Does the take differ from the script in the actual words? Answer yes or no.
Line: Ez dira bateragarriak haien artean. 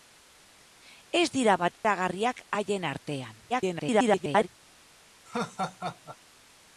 yes